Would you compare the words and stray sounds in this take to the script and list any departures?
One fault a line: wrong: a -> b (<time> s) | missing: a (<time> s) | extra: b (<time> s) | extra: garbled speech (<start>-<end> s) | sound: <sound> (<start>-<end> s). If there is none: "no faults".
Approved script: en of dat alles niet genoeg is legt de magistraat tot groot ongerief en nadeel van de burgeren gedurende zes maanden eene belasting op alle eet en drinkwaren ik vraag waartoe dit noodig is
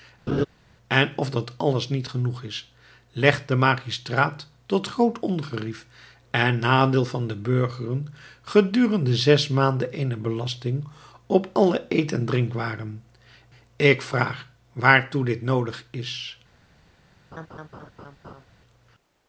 sound: laugh (0.3-0.5 s)
sound: laugh (17.3-18.5 s)